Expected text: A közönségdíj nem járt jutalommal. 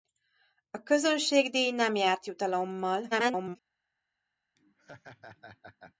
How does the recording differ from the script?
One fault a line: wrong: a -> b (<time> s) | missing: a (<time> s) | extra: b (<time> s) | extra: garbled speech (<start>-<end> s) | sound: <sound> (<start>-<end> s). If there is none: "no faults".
extra: garbled speech (3.1-3.6 s)
sound: laugh (4.6-6.0 s)